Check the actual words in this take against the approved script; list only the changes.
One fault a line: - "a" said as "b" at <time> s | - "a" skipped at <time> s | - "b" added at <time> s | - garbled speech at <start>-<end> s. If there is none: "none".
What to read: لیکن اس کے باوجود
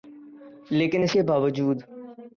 none